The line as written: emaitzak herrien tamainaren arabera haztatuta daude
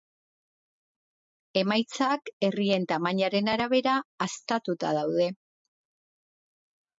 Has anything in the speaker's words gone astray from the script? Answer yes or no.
no